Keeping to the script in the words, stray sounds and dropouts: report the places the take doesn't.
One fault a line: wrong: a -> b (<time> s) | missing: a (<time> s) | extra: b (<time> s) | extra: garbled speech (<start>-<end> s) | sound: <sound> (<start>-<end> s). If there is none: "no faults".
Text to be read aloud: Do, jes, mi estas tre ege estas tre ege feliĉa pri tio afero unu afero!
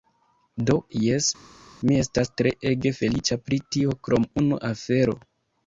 missing: estas tre ege (3.0 s)
wrong: afero -> krom (4.1 s)